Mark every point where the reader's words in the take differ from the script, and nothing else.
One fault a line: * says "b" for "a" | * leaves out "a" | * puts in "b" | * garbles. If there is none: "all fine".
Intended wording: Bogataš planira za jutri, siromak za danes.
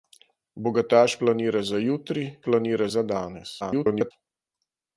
* says "planira" for "siromak"
* garbles